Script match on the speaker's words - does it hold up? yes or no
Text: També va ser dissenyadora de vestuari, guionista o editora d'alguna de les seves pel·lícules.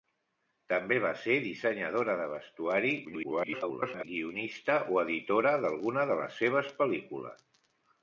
no